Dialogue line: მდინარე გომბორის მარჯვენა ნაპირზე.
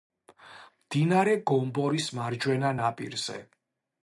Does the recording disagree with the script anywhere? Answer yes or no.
no